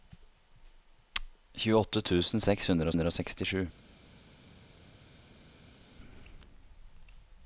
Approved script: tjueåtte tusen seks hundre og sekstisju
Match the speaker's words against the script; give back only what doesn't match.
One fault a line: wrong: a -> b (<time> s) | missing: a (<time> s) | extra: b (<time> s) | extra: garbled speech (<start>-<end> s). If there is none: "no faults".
extra: hundre (2.9 s)